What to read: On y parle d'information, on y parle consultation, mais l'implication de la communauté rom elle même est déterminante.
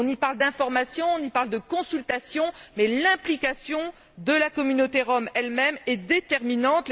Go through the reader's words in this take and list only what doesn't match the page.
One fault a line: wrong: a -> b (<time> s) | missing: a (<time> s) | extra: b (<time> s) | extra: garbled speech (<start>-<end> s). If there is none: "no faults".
extra: de (1.5 s)